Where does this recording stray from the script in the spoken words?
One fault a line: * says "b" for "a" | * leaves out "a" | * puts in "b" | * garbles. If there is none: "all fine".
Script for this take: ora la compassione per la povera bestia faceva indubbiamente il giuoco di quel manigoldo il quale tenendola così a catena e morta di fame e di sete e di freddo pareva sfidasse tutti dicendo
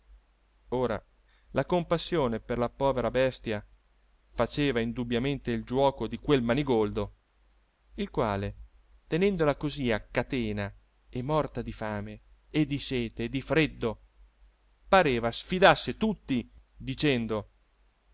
all fine